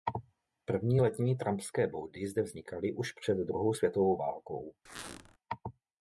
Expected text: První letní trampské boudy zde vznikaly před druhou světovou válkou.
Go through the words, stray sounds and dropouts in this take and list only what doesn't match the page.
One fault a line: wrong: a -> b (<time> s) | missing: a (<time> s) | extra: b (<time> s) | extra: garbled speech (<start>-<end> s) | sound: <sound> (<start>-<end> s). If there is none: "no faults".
extra: už (2.9 s)
sound: squeak (4.9-5.4 s)